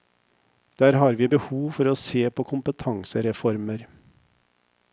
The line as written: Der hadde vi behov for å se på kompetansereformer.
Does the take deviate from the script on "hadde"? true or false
true